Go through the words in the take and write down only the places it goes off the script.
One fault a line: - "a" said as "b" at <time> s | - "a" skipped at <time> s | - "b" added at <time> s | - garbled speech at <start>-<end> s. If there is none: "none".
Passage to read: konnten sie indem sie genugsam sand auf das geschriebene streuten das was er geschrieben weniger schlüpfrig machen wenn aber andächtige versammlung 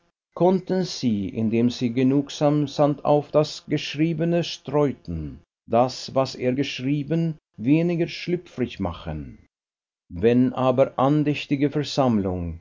none